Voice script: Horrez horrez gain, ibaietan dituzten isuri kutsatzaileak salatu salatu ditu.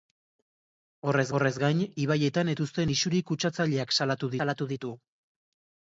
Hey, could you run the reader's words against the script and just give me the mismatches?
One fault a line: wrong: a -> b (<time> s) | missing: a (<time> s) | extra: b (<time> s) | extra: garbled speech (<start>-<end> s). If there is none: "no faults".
no faults